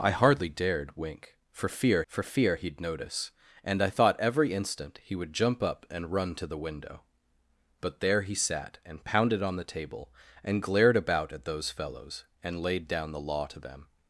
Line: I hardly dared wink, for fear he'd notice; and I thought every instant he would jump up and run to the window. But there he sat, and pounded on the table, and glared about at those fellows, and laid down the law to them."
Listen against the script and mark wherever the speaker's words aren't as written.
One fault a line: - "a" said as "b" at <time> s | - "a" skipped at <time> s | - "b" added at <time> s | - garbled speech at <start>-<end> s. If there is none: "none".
- "for fear" added at 2.1 s